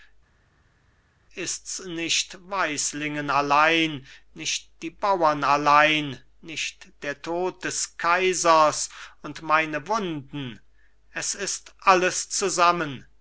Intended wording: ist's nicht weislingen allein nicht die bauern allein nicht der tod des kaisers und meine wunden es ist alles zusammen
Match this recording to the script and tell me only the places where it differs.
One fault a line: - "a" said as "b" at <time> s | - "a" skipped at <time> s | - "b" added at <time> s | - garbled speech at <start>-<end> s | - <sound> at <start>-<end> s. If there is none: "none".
none